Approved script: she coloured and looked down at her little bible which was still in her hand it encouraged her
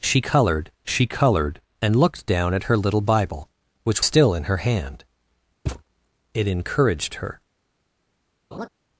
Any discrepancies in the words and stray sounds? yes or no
yes